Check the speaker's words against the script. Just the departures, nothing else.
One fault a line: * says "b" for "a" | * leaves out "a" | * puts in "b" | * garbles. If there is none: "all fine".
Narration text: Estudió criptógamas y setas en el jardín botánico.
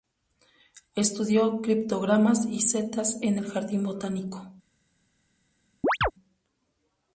all fine